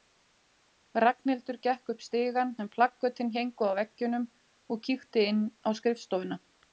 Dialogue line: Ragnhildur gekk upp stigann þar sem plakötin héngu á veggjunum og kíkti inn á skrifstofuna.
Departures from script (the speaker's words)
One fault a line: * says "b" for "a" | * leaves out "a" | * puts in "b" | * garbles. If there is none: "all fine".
* leaves out "þar"